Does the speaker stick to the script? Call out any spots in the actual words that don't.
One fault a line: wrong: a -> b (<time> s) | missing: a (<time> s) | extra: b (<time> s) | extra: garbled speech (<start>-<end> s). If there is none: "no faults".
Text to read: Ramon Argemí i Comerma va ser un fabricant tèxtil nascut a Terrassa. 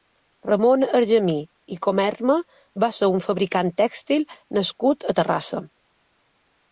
no faults